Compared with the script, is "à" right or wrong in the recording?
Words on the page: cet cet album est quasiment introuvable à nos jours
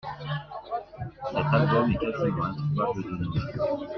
wrong